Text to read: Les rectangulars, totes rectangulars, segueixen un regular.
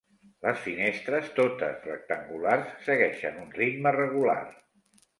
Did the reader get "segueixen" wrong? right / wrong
right